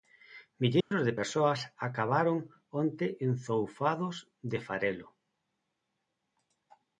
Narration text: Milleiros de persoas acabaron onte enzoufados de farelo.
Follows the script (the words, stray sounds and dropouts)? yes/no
no